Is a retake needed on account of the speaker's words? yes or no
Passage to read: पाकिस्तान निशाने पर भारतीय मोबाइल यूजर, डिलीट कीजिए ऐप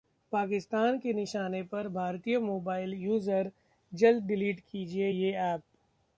yes